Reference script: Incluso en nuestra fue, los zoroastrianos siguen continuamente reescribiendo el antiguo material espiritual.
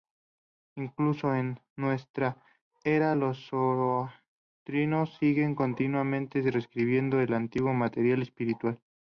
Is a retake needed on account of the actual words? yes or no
yes